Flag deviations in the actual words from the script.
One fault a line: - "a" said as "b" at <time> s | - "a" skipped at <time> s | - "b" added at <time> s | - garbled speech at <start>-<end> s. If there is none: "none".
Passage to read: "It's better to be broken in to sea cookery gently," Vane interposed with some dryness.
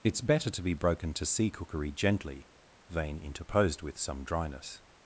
- "in" skipped at 1.1 s